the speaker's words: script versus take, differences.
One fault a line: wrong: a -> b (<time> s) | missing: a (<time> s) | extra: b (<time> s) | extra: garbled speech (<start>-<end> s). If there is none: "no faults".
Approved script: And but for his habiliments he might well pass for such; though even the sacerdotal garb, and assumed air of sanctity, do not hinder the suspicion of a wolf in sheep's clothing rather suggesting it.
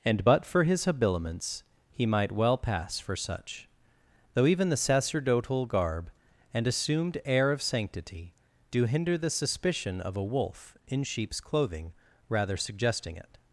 missing: not (8.8 s)